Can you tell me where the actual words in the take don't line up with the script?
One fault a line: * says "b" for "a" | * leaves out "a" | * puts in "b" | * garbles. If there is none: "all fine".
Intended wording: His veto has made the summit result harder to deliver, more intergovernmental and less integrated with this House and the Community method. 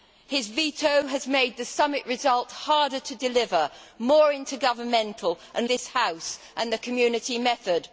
* leaves out "less integrated with"